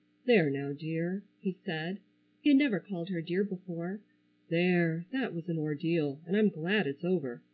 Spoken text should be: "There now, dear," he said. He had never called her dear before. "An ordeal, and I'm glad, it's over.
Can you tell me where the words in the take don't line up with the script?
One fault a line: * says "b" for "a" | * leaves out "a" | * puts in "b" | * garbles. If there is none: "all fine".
* puts in "There that was"